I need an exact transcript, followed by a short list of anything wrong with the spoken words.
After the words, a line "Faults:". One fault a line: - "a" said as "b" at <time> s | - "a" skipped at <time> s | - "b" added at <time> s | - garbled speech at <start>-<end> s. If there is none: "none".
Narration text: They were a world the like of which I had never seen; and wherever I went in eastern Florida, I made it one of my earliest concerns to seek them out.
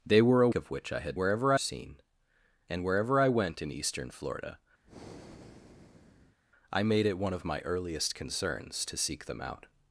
They were a of which I had wherever seen; and wherever I went in eastern Florida, I made it one of my earliest concerns to seek them out.
Faults:
- "world the like" skipped at 0.5 s
- "never" said as "wherever" at 1.2 s